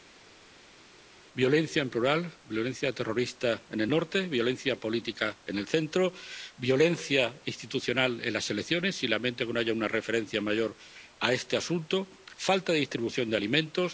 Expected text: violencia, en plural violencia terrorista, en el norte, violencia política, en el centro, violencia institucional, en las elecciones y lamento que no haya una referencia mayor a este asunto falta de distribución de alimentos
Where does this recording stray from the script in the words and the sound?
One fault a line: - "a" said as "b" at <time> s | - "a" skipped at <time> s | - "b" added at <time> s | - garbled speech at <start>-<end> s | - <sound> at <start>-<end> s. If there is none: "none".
none